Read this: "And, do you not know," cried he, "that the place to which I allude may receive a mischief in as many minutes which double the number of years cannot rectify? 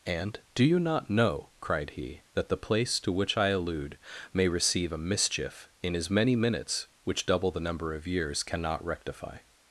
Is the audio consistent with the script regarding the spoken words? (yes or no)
yes